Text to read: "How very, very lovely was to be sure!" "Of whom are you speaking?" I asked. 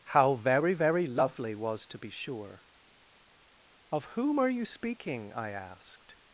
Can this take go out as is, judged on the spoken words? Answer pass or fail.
pass